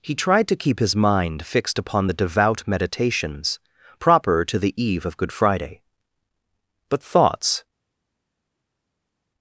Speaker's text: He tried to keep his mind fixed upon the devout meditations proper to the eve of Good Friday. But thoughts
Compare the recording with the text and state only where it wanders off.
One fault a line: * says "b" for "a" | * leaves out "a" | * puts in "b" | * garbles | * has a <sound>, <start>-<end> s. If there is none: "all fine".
all fine